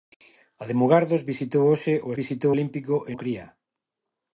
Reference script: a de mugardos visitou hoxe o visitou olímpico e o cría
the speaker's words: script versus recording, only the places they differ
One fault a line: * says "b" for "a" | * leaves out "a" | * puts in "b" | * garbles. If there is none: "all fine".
all fine